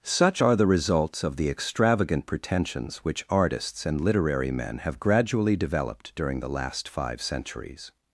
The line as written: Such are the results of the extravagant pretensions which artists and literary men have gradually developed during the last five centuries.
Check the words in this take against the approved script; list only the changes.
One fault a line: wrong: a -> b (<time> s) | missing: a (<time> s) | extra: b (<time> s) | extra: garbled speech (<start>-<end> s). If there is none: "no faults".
no faults